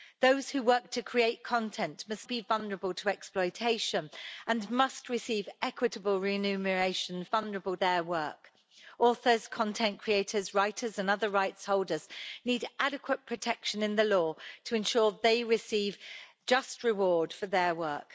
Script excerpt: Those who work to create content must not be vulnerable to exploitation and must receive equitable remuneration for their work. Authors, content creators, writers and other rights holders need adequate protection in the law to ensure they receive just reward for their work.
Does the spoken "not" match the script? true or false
false